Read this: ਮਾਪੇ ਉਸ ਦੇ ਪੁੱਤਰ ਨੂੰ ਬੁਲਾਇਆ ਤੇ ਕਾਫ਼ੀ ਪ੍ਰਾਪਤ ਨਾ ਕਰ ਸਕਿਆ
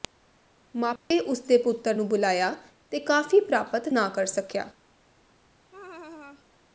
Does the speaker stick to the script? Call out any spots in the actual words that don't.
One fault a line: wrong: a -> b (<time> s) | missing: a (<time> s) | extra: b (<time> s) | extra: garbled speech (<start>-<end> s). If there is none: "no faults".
no faults